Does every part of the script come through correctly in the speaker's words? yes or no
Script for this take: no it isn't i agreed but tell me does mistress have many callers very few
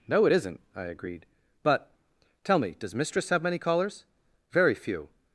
yes